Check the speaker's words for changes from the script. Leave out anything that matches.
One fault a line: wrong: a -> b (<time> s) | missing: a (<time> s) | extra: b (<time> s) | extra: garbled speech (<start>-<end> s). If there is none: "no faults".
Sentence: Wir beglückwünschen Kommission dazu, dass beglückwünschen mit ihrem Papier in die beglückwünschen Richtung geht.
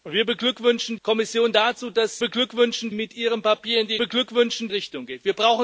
no faults